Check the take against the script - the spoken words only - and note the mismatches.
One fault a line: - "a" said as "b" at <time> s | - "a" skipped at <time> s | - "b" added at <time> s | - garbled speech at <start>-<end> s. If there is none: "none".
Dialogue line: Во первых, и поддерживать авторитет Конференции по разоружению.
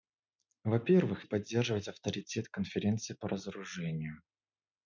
none